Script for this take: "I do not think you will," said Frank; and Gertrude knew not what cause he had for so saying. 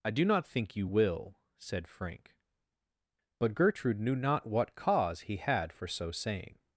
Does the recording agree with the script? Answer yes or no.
no